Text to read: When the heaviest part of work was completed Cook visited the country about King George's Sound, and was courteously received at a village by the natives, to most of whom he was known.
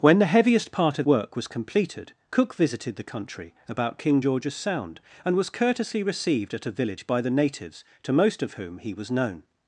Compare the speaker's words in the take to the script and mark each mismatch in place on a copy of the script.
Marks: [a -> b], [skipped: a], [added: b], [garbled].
When the heaviest part of work was completed Cook visited the country about King George's Sound, and was courteously received at a village by the natives, to most of whom he was known.